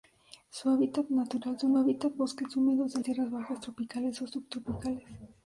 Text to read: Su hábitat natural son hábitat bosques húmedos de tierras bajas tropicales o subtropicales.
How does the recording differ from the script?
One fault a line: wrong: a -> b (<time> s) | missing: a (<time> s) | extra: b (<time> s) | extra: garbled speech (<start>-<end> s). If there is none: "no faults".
no faults